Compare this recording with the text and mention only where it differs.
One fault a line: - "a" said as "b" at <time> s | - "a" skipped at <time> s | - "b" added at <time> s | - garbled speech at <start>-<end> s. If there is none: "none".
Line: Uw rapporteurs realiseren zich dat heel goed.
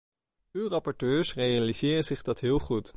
none